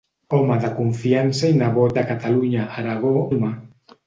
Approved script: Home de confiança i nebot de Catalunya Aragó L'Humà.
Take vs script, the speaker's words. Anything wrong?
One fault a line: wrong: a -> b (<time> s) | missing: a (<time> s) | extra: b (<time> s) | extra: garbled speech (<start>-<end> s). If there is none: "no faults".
no faults